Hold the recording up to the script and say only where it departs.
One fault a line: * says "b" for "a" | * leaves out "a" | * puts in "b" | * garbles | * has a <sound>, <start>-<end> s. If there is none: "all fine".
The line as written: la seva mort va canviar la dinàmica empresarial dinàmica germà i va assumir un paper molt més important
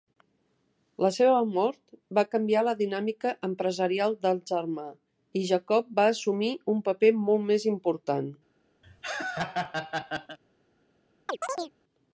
* says "del" for "dinàmica"
* puts in "jacob"
* has a laugh, 8.8-10.4 s
* has a chirp, 11.3-11.7 s